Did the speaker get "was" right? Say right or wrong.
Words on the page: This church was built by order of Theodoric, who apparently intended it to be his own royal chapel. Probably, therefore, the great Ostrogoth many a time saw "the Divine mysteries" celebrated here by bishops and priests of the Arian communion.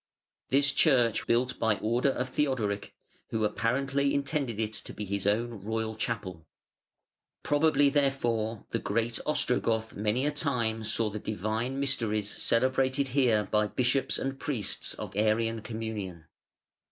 wrong